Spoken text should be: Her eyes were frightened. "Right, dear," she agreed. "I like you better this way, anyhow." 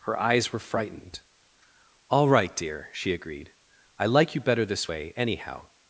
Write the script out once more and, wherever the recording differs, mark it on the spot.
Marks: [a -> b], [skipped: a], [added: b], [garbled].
Her eyes were frightened. [added: All] "Right, dear," she agreed. "I like you better this way, anyhow."